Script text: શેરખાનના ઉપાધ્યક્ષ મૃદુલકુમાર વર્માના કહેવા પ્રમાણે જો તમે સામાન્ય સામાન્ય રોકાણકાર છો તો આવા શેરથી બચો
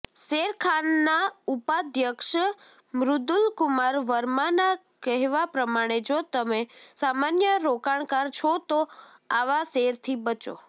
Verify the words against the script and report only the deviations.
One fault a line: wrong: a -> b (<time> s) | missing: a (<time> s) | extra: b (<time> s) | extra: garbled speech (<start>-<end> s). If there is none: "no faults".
missing: સામાન્ય (7.6 s)